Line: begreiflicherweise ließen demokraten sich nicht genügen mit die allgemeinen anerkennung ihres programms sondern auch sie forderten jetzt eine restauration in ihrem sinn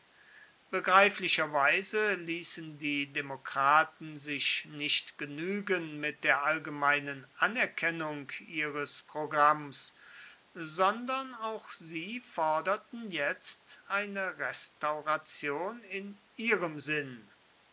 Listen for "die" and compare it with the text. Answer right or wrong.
wrong